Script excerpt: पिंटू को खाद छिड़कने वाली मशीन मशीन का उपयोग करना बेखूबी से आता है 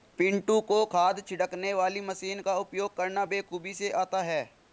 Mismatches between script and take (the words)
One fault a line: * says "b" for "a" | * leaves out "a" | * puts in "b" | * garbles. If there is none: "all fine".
* leaves out "मशीन"